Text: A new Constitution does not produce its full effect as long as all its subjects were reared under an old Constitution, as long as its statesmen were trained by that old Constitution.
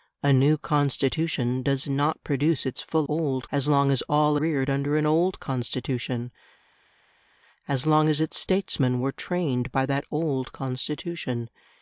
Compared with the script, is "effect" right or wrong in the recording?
wrong